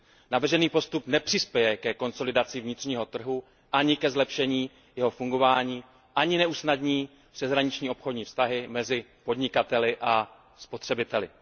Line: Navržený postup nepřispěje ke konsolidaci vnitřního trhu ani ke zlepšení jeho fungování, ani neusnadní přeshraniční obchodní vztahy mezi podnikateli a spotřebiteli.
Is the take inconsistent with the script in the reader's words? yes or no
no